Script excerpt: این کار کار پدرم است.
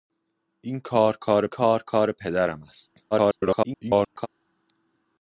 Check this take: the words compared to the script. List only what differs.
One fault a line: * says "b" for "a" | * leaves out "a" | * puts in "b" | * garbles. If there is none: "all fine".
* puts in "کار کار"
* garbles